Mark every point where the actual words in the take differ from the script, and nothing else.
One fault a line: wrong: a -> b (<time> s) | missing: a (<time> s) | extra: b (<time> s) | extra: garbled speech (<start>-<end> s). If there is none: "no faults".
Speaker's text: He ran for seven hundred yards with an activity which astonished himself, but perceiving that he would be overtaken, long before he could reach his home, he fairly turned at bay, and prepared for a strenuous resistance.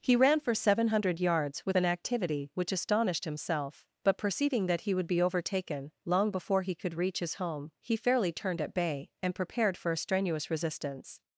no faults